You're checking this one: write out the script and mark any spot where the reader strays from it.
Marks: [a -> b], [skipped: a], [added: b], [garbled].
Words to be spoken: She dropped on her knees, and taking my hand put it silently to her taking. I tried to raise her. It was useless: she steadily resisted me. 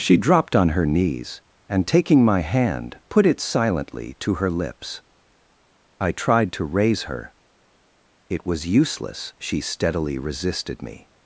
She dropped on her knees, and taking my hand put it silently to her [taking. -> lips] I tried to raise her. It was useless: she steadily resisted me.